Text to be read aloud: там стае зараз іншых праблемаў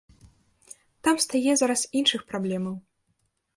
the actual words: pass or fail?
pass